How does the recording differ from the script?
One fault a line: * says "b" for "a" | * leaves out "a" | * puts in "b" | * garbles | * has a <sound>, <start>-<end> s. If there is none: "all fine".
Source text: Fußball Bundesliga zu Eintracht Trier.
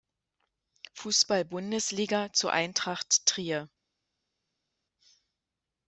all fine